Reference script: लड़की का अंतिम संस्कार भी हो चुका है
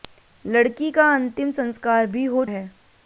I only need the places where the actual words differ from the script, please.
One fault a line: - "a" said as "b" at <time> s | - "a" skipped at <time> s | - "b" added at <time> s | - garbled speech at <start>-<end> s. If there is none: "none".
- "चुका" skipped at 2.4 s